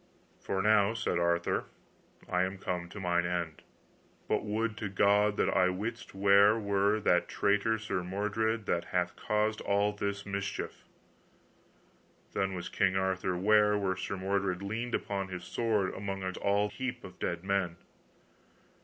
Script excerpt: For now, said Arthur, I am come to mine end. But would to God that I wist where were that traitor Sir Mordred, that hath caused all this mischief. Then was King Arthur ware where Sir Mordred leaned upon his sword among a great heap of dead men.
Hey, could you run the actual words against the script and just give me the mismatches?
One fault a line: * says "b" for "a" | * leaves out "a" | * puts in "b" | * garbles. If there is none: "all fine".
* says "all" for "great"